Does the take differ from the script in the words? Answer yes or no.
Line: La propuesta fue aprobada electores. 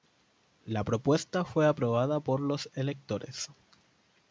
yes